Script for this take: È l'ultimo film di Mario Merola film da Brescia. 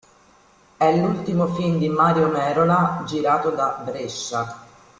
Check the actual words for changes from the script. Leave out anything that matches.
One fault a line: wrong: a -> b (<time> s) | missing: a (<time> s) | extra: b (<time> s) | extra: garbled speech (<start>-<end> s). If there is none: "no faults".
wrong: film -> girato (3.1 s)